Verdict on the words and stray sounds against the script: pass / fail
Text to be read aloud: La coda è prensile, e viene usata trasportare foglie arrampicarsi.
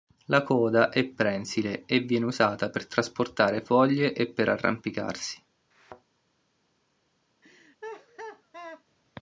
fail